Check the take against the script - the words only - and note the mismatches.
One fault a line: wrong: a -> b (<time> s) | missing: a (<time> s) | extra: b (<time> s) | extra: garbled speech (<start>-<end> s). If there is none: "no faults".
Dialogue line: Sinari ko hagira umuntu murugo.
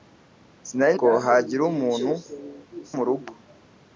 no faults